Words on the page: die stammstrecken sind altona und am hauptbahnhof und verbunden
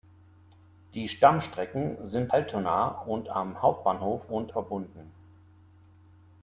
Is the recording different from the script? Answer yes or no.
no